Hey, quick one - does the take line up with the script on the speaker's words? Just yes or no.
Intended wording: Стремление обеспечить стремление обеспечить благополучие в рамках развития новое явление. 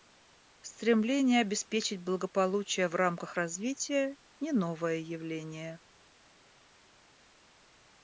no